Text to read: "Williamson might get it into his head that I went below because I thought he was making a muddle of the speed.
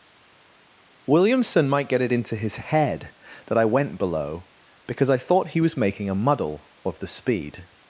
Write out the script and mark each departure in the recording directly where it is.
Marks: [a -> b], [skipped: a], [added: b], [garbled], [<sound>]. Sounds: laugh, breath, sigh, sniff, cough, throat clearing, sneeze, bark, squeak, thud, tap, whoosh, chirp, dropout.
"Williamson might get it into his head that I went below because I thought he was making a muddle of the speed.